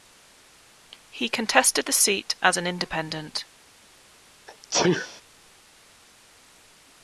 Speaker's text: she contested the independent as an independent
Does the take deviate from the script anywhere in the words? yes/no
yes